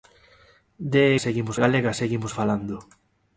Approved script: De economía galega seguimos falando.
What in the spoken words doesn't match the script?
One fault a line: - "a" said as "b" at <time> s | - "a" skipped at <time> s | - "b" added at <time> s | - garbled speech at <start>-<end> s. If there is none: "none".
- "economía" said as "seguimos" at 1.2 s